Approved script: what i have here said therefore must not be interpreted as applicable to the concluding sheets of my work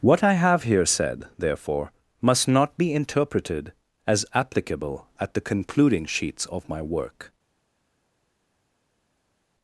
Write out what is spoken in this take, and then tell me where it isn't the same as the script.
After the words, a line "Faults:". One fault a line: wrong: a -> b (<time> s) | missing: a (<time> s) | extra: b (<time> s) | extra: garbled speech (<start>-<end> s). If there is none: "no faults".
what i have here said therefore must not be interpreted as applicable at the concluding sheets of my work
Faults:
wrong: to -> at (5.2 s)